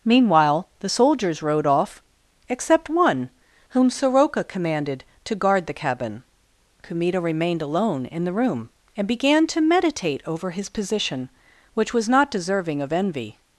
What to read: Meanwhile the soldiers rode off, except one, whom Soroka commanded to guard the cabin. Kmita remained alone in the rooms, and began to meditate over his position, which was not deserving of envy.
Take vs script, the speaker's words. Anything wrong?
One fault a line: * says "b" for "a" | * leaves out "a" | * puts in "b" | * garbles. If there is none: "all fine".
* says "room" for "rooms"